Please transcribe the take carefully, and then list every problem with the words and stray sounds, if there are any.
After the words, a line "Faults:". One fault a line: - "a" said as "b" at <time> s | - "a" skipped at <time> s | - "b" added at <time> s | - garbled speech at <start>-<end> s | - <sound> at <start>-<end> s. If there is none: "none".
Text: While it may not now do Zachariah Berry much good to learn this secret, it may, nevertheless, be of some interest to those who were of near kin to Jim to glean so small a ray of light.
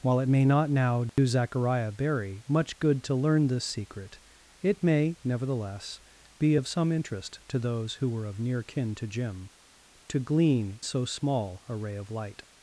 While it may not now do Zachariah Berry much good to learn this secret, it may, nevertheless, be of some interest to those who were of near kin to Jim to glean so small a ray of light.
Faults:
- dropout at 1.1-1.2 s